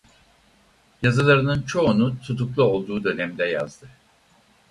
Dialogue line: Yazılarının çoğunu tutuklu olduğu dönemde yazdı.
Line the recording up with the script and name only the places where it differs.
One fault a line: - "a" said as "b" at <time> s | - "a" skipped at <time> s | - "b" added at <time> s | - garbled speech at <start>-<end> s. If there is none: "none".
none